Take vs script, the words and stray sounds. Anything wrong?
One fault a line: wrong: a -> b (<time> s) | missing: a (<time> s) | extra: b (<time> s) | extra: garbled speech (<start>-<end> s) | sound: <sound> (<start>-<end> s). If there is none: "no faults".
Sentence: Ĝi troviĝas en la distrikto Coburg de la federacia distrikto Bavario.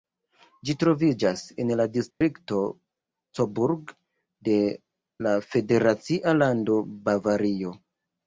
sound: dropout (2.1-2.2 s)
wrong: distrikto -> lando (6.4 s)